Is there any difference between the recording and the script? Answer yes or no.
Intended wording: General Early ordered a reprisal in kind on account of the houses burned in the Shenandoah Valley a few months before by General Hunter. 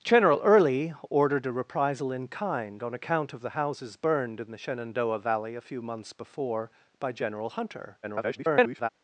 yes